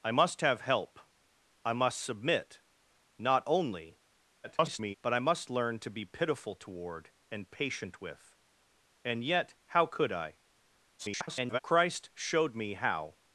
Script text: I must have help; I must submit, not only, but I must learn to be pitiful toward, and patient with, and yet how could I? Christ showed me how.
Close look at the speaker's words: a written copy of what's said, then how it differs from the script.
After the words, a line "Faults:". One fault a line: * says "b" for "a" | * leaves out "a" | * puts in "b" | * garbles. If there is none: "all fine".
I must have help; I must submit, not only, [garbled] but I must learn to be pitiful toward, and patient with, and yet how could I? [garbled] Christ showed me how.
Faults:
* garbles
* garbles